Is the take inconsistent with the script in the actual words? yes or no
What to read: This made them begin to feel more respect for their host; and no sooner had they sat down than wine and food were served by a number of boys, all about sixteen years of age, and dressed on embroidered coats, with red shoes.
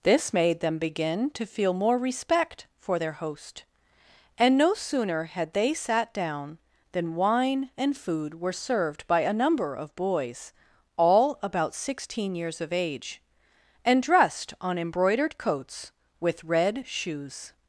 no